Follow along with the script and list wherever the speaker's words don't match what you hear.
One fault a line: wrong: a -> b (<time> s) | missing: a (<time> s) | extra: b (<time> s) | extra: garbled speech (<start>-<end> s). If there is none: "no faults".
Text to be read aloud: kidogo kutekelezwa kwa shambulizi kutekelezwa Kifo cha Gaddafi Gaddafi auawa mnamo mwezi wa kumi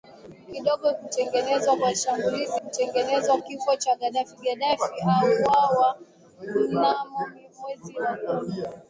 no faults